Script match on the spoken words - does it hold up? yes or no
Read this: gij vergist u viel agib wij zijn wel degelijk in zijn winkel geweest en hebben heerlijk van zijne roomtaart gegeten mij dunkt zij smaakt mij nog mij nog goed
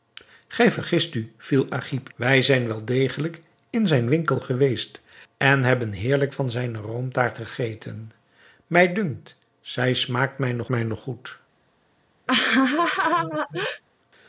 yes